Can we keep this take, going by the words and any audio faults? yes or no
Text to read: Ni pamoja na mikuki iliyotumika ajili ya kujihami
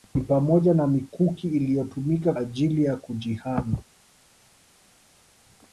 yes